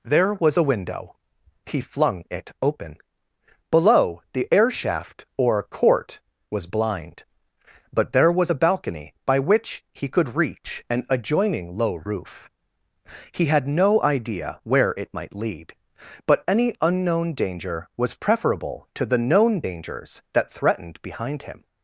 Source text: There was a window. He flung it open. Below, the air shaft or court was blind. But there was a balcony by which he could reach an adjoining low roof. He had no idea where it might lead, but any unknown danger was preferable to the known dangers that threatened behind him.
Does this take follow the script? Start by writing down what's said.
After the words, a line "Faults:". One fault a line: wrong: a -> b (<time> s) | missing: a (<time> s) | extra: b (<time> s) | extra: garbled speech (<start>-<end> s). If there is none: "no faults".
There was a window. He flung it open. Below, the air shaft or court was blind. But there was a balcony by which he could reach an adjoining low roof. He had no idea where it might lead, but any unknown danger was preferable to the known dangers that threatened behind him.
Faults:
no faults